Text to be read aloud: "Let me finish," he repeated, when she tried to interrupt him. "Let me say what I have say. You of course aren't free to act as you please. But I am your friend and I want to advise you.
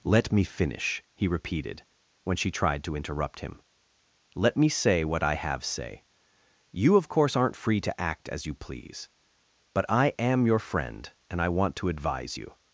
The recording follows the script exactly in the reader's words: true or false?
true